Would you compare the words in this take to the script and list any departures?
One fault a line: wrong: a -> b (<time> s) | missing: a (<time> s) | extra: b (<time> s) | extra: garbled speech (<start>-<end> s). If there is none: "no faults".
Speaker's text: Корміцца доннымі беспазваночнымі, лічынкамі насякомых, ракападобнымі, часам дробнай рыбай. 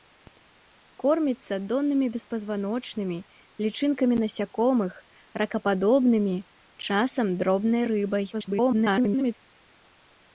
extra: garbled speech (8.3-9.3 s)